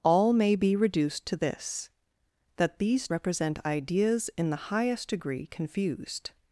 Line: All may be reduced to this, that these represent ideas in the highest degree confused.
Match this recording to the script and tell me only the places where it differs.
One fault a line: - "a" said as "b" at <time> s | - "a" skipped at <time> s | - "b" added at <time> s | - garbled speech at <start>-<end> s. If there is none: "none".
none